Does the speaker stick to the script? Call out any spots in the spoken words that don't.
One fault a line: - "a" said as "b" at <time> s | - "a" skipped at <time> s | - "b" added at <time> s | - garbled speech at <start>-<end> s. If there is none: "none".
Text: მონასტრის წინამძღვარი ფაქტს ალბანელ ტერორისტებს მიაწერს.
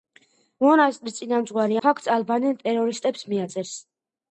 none